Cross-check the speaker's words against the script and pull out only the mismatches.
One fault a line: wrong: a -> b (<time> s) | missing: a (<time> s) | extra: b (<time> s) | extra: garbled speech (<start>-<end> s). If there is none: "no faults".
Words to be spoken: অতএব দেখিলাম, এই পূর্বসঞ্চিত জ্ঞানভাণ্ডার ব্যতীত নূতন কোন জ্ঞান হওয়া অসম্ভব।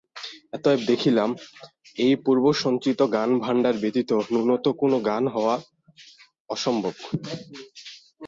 no faults